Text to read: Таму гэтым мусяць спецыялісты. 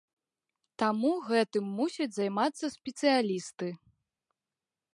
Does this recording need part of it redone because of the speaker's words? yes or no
yes